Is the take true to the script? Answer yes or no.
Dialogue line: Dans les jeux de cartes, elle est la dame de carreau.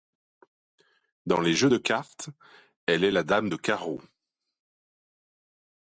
yes